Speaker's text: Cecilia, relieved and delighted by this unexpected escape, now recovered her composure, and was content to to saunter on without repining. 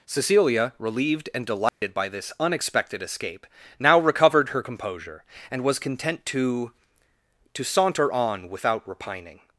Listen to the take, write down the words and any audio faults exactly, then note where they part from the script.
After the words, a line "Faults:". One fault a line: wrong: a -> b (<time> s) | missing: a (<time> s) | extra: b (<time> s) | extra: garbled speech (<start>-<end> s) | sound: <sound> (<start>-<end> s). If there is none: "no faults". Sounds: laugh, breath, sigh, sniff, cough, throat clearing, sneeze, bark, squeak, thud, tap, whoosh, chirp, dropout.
Cecilia, relieved and delighted by this unexpected escape, now recovered her composure, and was content to to saunter on without repining.
Faults:
sound: dropout (1.7-1.8 s)